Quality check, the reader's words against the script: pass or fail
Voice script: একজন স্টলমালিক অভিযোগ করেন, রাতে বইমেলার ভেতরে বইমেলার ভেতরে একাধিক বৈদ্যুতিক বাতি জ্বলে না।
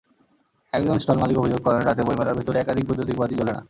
fail